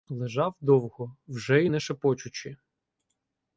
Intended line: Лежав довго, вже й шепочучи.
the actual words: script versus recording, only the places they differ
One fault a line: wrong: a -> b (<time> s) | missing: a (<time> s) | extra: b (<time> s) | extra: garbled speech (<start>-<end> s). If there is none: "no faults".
extra: не (1.6 s)